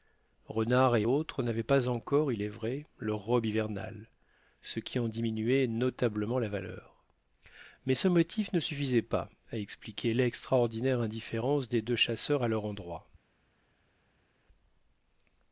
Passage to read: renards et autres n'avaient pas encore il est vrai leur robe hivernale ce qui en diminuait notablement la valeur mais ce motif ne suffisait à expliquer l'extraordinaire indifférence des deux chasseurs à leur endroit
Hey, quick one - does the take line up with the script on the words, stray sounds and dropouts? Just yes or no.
no